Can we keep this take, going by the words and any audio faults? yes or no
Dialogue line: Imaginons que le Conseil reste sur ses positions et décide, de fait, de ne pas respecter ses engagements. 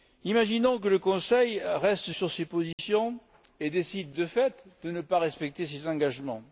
no